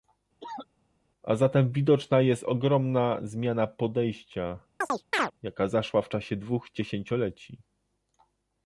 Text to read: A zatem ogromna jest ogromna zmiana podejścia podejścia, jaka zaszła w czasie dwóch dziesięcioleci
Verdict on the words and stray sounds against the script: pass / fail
fail